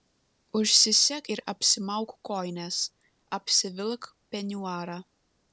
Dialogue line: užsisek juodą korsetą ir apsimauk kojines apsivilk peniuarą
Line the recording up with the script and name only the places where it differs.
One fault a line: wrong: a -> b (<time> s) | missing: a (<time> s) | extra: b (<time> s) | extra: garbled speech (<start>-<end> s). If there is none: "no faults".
missing: juodą korsetą (1.3 s)